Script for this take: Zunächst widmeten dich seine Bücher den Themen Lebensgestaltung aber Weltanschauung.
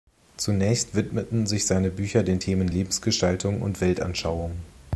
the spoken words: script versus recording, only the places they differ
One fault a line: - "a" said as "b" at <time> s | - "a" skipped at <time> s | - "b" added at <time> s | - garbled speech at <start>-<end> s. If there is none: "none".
- "dich" said as "sich" at 1.4 s
- "aber" said as "und" at 3.6 s